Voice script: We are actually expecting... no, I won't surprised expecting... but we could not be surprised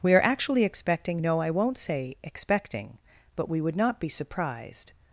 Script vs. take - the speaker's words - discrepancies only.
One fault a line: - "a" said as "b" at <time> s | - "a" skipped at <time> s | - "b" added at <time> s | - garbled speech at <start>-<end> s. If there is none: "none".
- "surprised" said as "say" at 1.8 s
- "could" said as "would" at 3.6 s